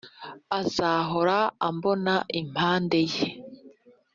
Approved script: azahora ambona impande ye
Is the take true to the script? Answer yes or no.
yes